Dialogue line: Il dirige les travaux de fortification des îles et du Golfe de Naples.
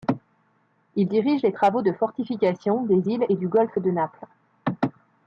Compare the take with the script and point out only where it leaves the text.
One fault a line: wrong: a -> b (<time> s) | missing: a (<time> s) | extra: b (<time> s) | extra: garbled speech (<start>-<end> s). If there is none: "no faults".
no faults